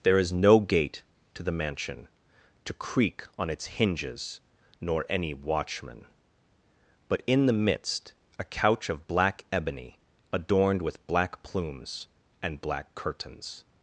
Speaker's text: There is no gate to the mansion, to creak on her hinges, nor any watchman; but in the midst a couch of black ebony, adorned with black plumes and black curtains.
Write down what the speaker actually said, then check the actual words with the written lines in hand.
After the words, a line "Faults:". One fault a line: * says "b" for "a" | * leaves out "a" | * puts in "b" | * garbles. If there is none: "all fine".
There is no gate to the mansion, to creak on its hinges, nor any watchman; but in the midst a couch of black ebony, adorned with black plumes and black curtains.
Faults:
* says "its" for "her"